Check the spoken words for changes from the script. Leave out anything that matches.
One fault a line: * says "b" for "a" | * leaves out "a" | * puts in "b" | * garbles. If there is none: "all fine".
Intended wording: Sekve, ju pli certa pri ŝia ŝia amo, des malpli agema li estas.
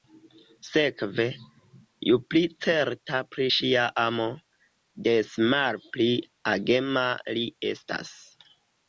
* leaves out "ŝia"